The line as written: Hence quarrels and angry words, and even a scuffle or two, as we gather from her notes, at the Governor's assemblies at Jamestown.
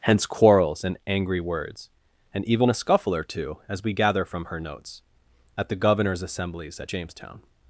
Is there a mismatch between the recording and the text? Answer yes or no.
no